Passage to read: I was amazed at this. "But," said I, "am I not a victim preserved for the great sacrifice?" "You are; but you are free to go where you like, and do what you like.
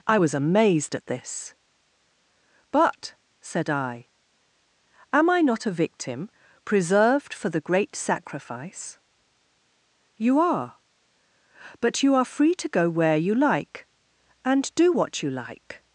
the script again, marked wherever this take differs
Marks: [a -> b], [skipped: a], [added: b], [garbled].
I was amazed at this. "But," said I, "am I not a victim preserved for the great sacrifice?" "You are; but you are free to go where you like, and do what you like.